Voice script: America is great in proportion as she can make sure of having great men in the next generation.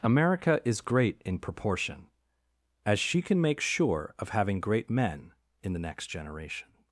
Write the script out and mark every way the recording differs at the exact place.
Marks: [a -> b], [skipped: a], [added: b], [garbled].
America is great in proportion as she can make sure of having great men in the next generation.